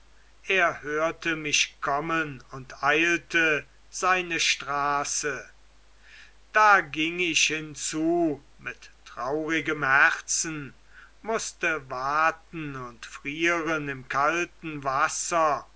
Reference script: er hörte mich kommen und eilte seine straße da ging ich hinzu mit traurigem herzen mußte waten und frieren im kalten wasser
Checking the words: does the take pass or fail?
pass